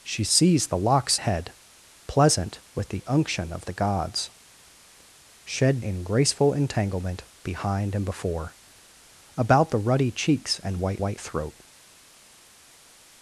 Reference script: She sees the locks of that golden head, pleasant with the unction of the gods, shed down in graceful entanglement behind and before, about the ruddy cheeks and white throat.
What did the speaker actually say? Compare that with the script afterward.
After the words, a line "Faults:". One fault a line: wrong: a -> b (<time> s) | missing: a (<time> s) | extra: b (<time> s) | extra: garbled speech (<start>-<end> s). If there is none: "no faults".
She sees the locks head, pleasant with the unction of the gods, shed in graceful entanglement behind and before, about the ruddy cheeks and white white throat.
Faults:
missing: of that golden (1.2 s)
missing: down (5.8 s)
extra: white (11.0 s)